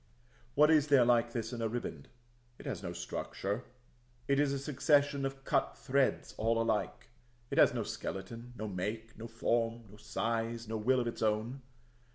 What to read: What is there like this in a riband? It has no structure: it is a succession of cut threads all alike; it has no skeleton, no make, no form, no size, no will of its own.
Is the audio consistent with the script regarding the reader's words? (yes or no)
yes